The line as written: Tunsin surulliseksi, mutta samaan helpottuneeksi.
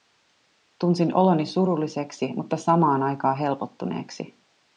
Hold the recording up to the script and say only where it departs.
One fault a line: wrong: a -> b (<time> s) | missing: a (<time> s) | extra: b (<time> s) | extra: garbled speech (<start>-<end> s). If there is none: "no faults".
extra: oloni (1.1 s)
extra: aikaan (3.0 s)